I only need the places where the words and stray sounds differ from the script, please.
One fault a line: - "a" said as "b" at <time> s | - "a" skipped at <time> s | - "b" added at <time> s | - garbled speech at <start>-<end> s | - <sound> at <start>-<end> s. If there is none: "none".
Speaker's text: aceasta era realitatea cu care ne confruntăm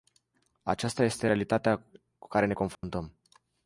- "era" said as "este" at 1.0 s
- dropout at 2.7-2.8 s